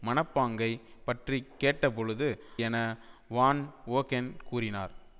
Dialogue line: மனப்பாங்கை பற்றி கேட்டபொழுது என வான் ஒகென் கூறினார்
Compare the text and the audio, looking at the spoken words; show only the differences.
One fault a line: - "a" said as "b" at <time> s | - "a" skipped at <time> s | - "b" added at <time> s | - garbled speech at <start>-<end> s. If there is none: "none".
none